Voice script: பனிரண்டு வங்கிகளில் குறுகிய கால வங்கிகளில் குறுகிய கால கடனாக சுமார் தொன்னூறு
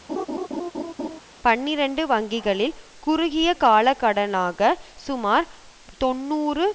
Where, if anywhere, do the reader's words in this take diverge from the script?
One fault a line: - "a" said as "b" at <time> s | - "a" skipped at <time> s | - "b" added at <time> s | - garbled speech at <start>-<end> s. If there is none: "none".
- "வங்கிகளில் குறுகிய கால" skipped at 3.9 s